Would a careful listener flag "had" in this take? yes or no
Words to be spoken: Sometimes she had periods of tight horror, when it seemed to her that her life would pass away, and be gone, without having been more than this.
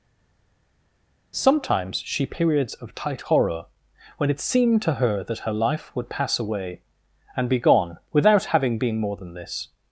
yes